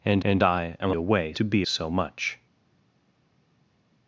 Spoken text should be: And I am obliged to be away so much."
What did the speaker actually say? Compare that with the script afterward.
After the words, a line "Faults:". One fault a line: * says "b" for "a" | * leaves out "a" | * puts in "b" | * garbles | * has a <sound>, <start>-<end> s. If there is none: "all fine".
And and I am away to be so much."
Faults:
* puts in "and"
* says "away" for "obliged"
* leaves out "away"